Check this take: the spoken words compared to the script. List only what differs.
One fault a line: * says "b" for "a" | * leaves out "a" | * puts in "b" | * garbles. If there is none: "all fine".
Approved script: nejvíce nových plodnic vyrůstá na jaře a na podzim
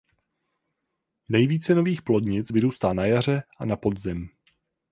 all fine